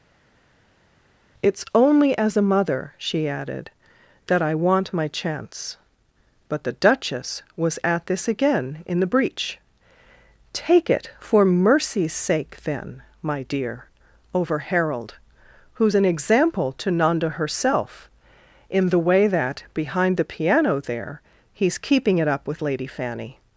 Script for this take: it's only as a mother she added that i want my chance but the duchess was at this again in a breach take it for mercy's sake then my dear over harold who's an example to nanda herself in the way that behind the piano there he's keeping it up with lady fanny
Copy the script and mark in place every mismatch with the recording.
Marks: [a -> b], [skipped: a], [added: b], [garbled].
it's only as a mother she added that i want my chance but the duchess was at this again in [a -> the] breach take it for mercy's sake then my dear over harold who's an example to nanda herself in the way that behind the piano there he's keeping it up with lady fanny